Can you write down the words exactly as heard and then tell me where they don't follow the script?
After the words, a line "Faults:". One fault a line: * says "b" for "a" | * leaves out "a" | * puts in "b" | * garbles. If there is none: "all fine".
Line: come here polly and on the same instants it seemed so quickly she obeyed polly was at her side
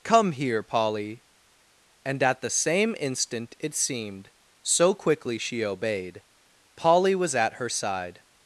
come here polly and at the same instant it seemed so quickly she obeyed polly was at her side
Faults:
* says "at" for "on"
* says "instant" for "instants"